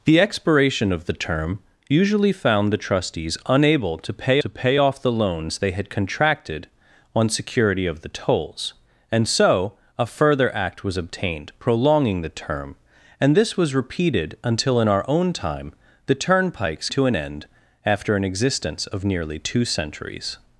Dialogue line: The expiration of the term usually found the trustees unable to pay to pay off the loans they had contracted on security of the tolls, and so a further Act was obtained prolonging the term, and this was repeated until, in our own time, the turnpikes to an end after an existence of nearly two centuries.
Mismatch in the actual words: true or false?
false